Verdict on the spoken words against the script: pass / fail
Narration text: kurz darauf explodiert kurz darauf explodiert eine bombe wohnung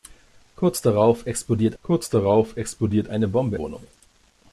pass